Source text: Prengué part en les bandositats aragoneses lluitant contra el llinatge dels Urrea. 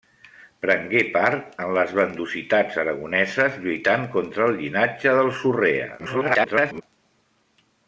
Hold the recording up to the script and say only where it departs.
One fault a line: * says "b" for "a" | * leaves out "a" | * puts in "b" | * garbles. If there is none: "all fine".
* garbles